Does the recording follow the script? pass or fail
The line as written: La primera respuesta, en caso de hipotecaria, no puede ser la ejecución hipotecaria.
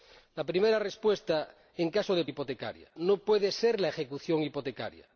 pass